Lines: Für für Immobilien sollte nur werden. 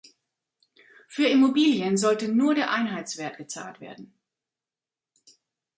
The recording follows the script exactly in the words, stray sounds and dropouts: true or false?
false